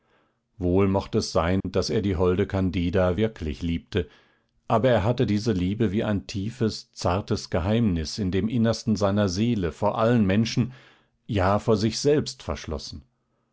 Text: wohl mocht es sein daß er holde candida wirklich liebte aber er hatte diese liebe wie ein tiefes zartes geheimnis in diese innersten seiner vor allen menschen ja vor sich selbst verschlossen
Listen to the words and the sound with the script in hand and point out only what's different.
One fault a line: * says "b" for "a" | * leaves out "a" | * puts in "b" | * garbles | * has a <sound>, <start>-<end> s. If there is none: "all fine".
* has a dropout, 1.6-1.6 s
* puts in "die"
* says "dem" for "diese"
* puts in "seele"